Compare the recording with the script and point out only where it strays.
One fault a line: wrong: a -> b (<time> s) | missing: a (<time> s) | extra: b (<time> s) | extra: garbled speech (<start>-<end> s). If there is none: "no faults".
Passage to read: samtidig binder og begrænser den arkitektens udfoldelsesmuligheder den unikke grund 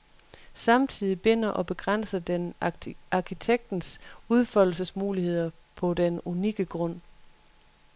extra: på (5.8 s)